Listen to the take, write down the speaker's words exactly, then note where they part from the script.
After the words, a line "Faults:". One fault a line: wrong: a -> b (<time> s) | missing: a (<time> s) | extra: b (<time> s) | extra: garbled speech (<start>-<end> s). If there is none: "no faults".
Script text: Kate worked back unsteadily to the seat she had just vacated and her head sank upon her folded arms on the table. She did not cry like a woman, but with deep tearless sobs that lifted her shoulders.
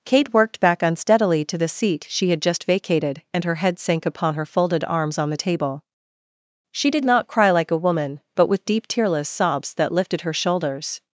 Kate worked back unsteadily to the seat she had just vacated and her head sank upon her folded arms on the table. She did not cry like a woman, but with deep tearless sobs that lifted her shoulders.
Faults:
no faults